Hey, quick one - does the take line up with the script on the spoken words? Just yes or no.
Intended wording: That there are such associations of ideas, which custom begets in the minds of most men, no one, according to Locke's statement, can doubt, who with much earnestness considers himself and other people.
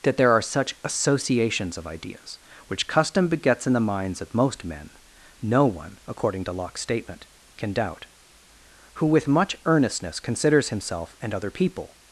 yes